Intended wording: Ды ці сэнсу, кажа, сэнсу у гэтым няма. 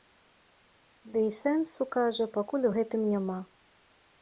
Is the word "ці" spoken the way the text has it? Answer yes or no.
no